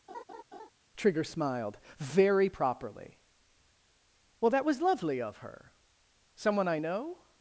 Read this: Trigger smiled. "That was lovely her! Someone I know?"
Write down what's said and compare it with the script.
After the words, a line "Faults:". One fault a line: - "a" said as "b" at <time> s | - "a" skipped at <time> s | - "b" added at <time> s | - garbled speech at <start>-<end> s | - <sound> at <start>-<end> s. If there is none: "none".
Trigger smiled. "Very properly. Well, that was lovely of her! Someone I know?"
Faults:
- laugh at 0.1-0.7 s
- "Very properly Well" added at 2.0 s
- "of" added at 5.2 s